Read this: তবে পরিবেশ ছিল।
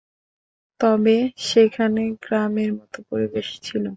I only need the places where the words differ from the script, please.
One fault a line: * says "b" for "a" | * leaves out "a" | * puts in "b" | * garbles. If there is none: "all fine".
* puts in "সেখানে গ্রামের মতো"